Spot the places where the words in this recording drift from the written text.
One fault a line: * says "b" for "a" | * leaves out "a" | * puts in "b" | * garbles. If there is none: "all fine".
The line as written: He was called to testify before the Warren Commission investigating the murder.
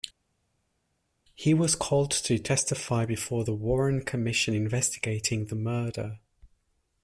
all fine